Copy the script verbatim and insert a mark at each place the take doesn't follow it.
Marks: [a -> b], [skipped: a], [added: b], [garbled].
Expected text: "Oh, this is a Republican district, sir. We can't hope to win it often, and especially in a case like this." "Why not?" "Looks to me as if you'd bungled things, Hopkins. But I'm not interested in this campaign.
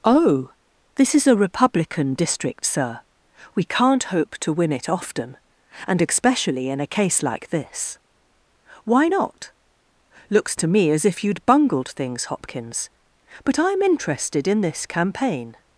"Oh, this is a Republican district, sir. We can't hope to win it often, and especially in a case like this." "Why not?" "Looks to me as if you'd bungled things, Hopkins. But I'm [skipped: not] interested in this campaign.